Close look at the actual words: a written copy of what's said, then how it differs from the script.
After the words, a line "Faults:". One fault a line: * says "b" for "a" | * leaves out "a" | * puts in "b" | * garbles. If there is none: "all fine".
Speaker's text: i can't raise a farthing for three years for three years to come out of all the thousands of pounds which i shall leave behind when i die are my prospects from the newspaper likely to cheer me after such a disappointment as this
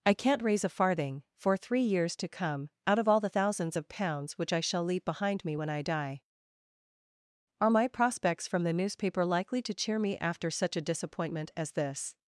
i can't raise a farthing for three years to come out of all the thousands of pounds which i shall leave behind me when i die are my prospects from the newspaper likely to cheer me after such a disappointment as this
Faults:
* leaves out "for three years"
* puts in "me"